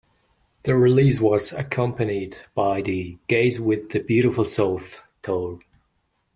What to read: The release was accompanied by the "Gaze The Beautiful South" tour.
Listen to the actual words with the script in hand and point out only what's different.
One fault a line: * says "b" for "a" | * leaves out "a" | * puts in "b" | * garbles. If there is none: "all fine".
* puts in "With"